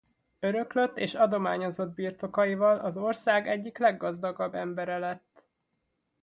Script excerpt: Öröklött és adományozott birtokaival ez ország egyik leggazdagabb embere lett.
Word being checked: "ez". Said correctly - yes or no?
no